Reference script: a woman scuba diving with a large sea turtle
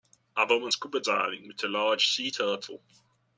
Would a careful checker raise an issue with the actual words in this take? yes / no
no